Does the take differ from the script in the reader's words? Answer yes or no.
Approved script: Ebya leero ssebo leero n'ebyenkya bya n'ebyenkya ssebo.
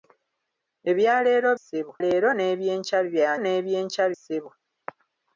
no